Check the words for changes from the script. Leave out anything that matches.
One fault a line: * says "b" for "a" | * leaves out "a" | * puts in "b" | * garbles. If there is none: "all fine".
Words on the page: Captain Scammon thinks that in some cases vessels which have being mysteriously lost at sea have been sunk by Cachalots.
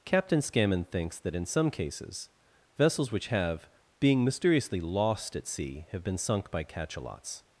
all fine